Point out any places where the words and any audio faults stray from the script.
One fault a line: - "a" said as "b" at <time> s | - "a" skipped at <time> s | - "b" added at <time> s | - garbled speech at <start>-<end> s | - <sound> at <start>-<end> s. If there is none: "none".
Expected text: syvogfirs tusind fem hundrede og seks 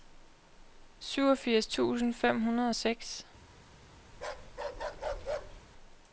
- bark at 4.1-5.6 s